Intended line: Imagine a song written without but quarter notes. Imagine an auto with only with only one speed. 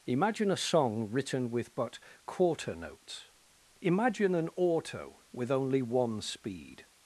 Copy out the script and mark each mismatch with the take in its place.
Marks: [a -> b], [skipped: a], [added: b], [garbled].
Imagine a song written [without -> with] but quarter notes. Imagine an auto with only [skipped: with only] one speed.